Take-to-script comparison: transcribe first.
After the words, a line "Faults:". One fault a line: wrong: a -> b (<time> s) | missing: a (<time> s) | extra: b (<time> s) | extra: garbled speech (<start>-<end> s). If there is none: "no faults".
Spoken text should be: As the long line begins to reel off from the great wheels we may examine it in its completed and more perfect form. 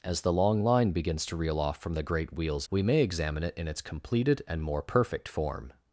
As the long line begins to reel off from the great wheels we may examine it in its completed and more perfect form.
Faults:
no faults